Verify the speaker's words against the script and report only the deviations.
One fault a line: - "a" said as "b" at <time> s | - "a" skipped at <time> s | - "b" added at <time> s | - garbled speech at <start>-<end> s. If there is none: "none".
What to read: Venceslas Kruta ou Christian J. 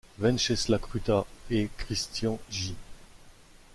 - "ou" said as "et" at 1.5 s